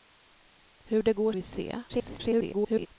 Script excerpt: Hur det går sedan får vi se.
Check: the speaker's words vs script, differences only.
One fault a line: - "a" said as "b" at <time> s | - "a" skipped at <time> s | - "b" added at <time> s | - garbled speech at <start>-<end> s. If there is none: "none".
- "sedan får" skipped at 1.3 s
- garbled speech at 1.9-2.9 s